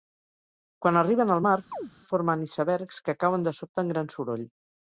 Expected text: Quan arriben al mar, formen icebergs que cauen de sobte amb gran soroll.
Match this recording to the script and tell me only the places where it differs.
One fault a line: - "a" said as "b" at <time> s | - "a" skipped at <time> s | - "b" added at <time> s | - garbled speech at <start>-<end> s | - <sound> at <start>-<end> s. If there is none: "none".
- chirp at 1.7-1.9 s